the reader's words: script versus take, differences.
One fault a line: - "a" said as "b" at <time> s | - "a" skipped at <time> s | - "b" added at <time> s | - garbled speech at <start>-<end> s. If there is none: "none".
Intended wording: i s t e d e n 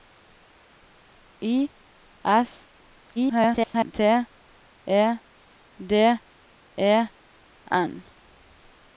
- garbled speech at 3.2-3.9 s